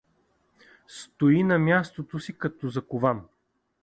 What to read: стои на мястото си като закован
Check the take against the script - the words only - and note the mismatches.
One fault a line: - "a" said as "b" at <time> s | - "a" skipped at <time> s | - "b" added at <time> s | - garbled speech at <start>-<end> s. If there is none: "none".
none